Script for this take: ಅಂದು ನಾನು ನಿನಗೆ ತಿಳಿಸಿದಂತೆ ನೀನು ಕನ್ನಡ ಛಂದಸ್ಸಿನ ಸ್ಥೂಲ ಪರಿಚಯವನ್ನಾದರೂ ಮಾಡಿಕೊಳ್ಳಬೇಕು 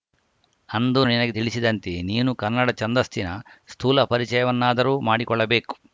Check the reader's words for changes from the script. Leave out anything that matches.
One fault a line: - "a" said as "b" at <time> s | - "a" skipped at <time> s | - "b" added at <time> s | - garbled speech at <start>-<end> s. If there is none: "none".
- "ನಾನು" skipped at 1.0 s